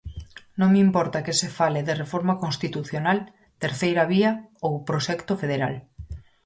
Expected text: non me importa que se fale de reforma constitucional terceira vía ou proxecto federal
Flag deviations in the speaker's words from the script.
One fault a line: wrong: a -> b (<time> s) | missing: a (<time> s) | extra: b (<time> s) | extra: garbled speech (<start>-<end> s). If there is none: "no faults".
no faults